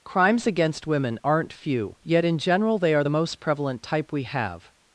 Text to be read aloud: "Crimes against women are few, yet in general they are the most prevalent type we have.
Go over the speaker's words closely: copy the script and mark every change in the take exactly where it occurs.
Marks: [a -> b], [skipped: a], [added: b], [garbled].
"Crimes against women [are -> aren't] few, yet in general they are the most prevalent type we have.